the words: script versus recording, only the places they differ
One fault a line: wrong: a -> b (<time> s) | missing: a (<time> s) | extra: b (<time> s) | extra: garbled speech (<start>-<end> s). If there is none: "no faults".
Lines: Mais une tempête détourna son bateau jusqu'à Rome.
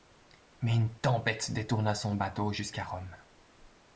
no faults